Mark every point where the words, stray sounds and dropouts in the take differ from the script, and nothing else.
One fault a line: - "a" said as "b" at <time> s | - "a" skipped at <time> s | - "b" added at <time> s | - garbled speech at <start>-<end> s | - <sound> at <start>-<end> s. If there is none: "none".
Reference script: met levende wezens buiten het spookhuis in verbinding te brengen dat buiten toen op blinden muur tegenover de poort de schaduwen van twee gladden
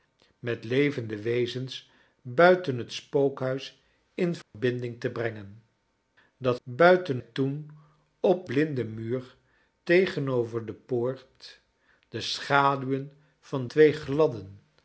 - dropout at 4.4-4.5 s